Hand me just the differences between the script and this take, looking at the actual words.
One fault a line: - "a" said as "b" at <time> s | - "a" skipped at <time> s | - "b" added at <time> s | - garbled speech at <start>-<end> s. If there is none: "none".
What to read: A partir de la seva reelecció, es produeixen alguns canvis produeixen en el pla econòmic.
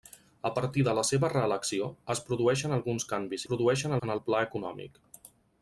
none